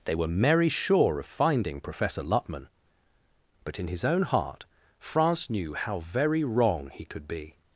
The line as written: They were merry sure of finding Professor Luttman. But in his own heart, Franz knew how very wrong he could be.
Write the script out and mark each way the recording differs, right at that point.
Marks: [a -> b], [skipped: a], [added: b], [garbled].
They were merry sure of finding Professor Luttman. But in his own heart, Franz knew how very wrong he could be.